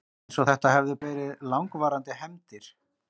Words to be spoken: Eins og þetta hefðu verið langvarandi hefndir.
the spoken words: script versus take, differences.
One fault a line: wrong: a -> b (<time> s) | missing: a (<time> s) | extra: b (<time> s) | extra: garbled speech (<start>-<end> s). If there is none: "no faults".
no faults